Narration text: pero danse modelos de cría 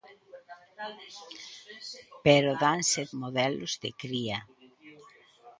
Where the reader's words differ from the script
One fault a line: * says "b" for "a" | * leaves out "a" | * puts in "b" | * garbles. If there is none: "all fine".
all fine